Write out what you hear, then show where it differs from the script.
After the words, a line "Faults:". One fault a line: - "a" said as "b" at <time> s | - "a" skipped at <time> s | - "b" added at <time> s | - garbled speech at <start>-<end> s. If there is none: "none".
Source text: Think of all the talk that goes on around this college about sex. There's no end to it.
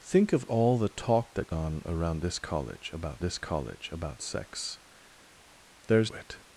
Think of all the talk that on around this college about this college about sex. There's it.
Faults:
- "goes" skipped at 1.5 s
- "sex There's no end to" said as "this college about sex There's" at 3.2 s